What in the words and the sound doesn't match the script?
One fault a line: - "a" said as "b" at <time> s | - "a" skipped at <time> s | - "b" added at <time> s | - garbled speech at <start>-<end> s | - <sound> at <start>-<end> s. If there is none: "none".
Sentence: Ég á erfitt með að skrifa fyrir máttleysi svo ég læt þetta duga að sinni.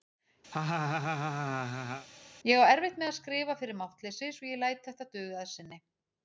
- laugh at 0.5-2.1 s